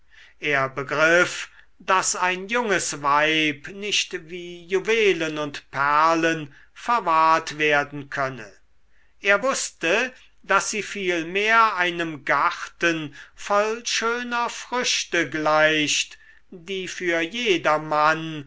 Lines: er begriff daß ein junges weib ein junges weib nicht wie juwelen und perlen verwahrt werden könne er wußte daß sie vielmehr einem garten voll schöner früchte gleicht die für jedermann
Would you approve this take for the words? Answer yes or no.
no